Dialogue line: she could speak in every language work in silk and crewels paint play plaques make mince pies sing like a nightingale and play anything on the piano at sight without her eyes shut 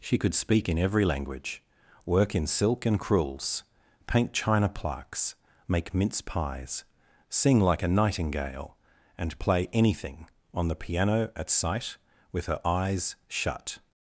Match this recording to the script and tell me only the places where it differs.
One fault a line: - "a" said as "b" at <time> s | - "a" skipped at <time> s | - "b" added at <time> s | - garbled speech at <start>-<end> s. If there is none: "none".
- "play" said as "china" at 4.3 s
- "without" said as "with" at 12.3 s